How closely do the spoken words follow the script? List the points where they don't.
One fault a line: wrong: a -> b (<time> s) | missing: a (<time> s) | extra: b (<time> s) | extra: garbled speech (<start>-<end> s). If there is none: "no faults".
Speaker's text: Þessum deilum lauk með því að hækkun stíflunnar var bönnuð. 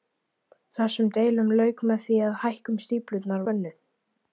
missing: var (3.5 s)